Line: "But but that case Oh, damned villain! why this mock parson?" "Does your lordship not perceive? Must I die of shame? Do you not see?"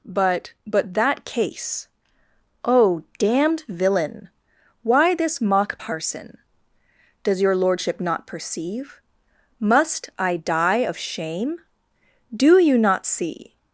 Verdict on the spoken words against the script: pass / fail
pass